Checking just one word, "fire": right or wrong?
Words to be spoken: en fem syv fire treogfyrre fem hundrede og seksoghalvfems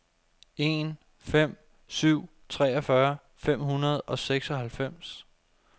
wrong